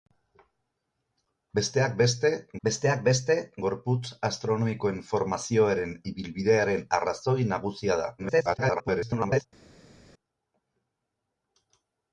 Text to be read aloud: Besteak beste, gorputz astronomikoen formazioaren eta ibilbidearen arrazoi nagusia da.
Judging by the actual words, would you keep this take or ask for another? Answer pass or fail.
fail